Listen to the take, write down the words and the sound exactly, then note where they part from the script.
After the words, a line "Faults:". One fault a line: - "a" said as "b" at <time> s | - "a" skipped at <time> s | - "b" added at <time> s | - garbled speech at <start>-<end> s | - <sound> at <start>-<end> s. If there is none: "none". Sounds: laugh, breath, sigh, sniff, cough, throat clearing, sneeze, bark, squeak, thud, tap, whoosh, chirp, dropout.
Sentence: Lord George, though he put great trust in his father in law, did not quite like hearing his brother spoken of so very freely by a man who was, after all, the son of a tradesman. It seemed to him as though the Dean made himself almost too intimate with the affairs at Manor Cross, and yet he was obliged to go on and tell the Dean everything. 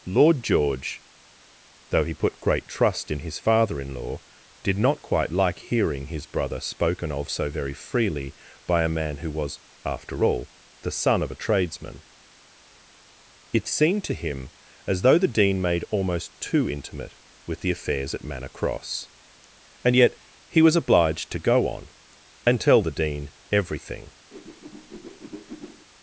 Lord George, though he put great trust in his father in law, did not quite like hearing his brother spoken of so very freely by a man who was, after all, the son of a tradesman. It seemed to him as though the Dean made almost too intimate with the affairs at Manor Cross, and yet he was obliged to go on and tell the Dean everything.
Faults:
- "himself" skipped at 15.8 s
- whoosh at 24.3-25.9 s